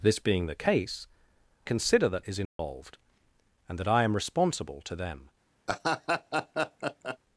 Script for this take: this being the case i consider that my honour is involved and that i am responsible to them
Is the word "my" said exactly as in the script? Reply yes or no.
no